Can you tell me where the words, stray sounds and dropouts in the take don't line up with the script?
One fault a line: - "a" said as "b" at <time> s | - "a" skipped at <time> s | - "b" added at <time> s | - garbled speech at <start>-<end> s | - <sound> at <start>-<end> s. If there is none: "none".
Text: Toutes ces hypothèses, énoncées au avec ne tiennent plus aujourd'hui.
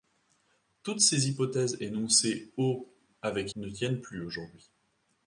none